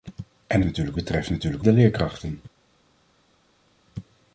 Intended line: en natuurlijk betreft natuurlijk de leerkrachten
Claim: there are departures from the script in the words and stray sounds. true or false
false